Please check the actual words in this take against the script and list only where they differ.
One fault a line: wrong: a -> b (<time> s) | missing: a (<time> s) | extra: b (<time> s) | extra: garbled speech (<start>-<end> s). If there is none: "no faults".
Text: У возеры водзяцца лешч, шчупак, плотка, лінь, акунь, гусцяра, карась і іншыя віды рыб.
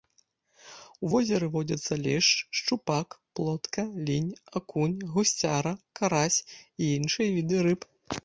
no faults